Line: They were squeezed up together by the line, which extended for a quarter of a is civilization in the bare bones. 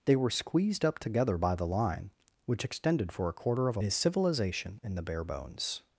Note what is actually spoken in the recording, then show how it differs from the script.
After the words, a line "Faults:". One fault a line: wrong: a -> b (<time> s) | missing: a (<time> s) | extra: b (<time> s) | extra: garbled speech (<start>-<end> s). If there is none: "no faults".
They were squeezed up together by the line, which extended for a quarter of a is civilization in the bare bones.
Faults:
no faults